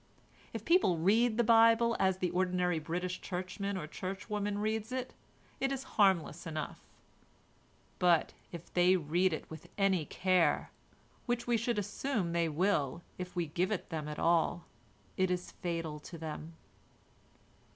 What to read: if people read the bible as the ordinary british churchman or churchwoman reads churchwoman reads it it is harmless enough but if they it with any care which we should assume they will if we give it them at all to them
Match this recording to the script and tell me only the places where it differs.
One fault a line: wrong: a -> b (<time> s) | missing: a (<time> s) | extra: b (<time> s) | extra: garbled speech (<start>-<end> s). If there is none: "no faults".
missing: churchwoman reads (4.9 s)
extra: read (9.0 s)
extra: it is fatal (15.2 s)